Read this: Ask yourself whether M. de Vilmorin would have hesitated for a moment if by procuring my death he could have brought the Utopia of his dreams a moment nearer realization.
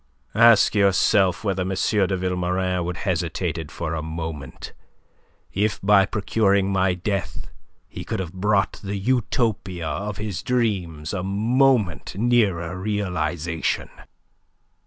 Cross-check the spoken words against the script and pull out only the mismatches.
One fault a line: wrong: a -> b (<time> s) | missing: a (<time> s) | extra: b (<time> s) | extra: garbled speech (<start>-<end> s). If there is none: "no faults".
missing: have (3.0 s)